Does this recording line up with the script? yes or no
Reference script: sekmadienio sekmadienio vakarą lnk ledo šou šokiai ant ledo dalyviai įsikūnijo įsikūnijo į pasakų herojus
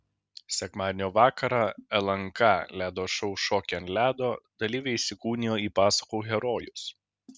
no